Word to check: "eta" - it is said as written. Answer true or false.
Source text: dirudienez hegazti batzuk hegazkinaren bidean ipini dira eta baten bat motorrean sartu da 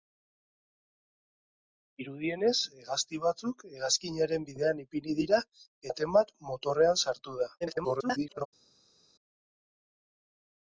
false